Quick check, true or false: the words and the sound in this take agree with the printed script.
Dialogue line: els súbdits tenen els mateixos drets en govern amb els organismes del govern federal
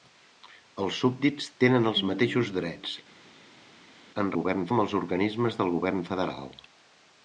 true